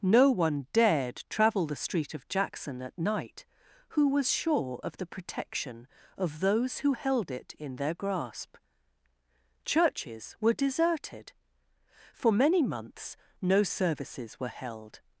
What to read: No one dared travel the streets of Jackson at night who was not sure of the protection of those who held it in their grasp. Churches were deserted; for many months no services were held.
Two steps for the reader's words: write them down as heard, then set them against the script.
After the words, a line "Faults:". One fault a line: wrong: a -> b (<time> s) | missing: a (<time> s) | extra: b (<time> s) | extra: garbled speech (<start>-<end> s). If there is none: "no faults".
No one dared travel the street of Jackson at night who was sure of the protection of those who held it in their grasp. Churches were deserted; for many months no services were held.
Faults:
wrong: streets -> street (1.8 s)
missing: not (4.3 s)